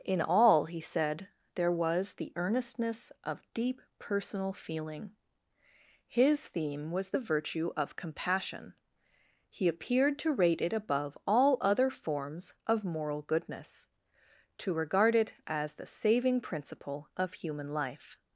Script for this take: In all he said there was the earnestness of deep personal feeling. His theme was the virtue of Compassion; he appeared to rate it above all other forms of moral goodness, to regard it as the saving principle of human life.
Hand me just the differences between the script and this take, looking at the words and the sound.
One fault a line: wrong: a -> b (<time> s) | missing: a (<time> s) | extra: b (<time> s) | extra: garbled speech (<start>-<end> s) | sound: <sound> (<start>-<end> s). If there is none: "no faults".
no faults